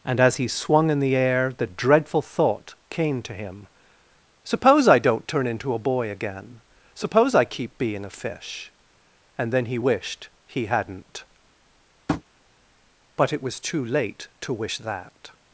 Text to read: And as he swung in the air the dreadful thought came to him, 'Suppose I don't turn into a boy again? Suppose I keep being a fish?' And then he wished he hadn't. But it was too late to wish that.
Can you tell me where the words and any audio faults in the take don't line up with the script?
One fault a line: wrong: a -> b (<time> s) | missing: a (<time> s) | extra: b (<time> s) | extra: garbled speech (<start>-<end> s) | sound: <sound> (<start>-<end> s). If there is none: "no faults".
sound: tap (12.1-12.2 s)